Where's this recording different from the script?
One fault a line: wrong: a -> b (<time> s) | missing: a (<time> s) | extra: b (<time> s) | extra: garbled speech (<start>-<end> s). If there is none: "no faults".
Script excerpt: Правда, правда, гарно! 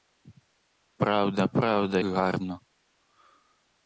no faults